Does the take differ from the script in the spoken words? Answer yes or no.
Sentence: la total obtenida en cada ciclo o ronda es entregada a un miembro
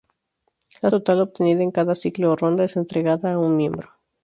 no